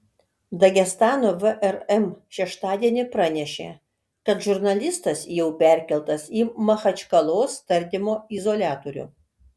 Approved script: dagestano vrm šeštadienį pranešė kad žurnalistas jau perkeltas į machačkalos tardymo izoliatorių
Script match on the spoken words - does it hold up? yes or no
yes